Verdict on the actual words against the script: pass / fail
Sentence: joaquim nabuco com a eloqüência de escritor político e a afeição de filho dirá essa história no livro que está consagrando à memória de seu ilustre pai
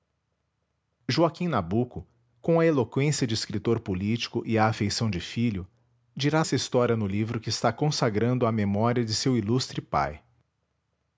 pass